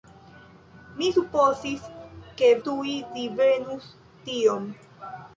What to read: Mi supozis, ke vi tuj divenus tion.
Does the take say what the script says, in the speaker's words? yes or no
no